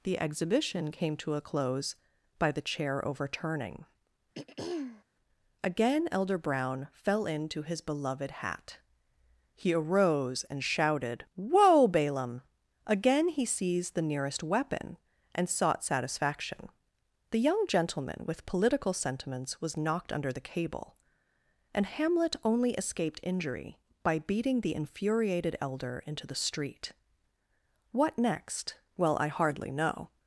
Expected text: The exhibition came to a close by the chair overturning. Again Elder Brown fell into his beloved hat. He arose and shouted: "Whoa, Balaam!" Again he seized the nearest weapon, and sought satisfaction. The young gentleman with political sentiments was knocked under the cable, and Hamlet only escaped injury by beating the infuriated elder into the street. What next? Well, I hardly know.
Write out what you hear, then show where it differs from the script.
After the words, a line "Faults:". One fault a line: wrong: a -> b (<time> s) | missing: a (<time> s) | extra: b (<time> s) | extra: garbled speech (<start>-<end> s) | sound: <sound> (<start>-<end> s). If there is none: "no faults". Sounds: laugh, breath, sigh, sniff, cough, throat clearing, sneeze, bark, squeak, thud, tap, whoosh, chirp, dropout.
The exhibition came to a close by the chair overturning. Again Elder Brown fell into his beloved hat. He arose and shouted: "Whoa, Balaam!" Again he seized the nearest weapon, and sought satisfaction. The young gentleman with political sentiments was knocked under the cable, and Hamlet only escaped injury by beating the infuriated elder into the street. What next? Well, I hardly know.
Faults:
sound: throat clearing (4.3-5.0 s)